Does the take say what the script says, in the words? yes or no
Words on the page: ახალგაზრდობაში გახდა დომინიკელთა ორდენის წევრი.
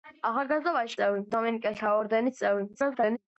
no